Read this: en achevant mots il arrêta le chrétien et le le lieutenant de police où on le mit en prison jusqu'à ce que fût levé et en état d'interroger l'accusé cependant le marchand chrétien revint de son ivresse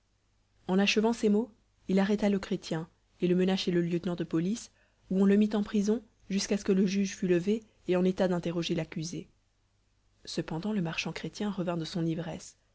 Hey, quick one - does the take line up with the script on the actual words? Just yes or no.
no